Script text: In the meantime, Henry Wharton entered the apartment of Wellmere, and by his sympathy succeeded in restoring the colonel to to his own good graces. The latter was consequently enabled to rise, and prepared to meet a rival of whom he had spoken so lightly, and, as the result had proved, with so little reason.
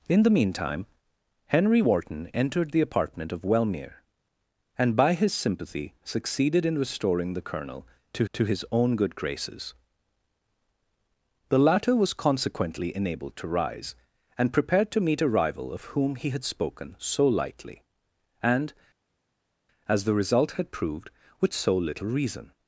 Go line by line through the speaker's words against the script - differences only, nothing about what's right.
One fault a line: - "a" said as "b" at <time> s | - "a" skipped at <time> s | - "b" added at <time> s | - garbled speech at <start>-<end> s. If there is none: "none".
none